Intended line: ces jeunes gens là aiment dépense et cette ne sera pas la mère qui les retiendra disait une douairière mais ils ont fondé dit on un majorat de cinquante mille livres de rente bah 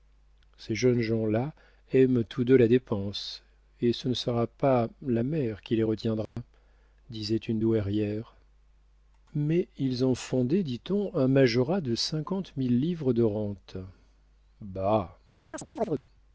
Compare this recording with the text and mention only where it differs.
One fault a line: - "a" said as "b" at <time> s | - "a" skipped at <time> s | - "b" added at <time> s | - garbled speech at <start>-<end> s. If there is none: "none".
- "tous deux la" added at 2.2 s
- "cette" said as "ce" at 3.9 s